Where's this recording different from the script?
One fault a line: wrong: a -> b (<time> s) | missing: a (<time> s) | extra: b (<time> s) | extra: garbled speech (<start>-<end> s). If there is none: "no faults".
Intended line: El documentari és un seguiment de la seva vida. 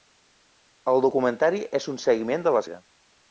missing: seva (2.7 s)